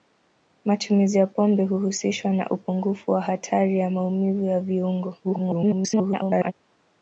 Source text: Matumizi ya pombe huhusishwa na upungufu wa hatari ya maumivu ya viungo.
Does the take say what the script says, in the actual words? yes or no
no